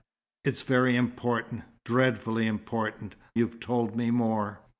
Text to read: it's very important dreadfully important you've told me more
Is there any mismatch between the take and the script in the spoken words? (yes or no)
no